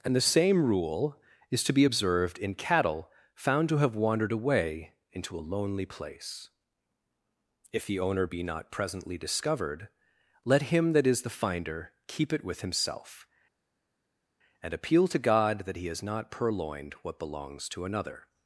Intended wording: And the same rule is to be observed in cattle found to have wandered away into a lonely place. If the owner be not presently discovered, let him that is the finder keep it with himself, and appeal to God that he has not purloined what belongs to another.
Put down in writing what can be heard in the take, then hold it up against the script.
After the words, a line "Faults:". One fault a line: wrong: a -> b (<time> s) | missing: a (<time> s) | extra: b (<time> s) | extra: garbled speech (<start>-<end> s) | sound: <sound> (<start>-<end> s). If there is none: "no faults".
And the same rule is to be observed in cattle found to have wandered away into a lonely place. If the owner be not presently discovered, let him that is the finder keep it with himself, and appeal to God that he has not purloined what belongs to another.
Faults:
no faults